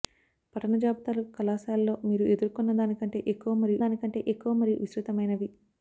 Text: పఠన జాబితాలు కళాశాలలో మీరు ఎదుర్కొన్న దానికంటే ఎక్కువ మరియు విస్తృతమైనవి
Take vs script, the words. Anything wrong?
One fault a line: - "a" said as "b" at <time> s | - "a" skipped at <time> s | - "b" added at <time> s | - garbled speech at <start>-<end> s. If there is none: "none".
- "దానికంటే ఎక్కువ మరియు" added at 3.8 s